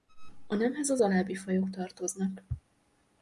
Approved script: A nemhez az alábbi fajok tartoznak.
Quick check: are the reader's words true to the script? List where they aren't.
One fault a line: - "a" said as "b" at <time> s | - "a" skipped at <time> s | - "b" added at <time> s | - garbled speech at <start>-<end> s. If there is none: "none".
none